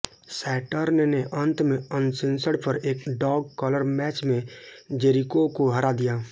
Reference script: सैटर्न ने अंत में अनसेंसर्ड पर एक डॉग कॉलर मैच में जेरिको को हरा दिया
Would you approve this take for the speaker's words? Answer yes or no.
yes